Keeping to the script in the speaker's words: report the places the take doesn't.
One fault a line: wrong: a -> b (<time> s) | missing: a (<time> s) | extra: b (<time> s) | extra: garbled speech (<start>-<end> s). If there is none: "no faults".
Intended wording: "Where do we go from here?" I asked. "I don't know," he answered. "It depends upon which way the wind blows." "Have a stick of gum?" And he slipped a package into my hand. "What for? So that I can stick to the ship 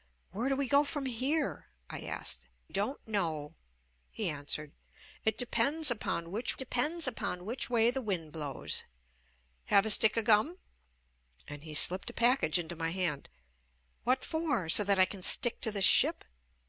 missing: I (2.5 s)
extra: depends upon which (6.6 s)